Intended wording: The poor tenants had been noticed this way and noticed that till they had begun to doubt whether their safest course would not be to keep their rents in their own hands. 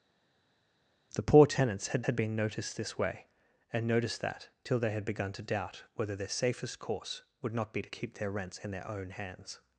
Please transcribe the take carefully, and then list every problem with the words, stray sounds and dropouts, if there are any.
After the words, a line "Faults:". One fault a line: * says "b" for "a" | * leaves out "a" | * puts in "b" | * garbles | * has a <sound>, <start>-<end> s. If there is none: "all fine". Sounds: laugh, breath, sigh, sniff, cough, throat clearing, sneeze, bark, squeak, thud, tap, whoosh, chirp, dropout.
The poor tenants had had been noticed this way and noticed that till they had begun to doubt whether their safest course would not be to keep their rents in their own hands.
Faults:
* puts in "had"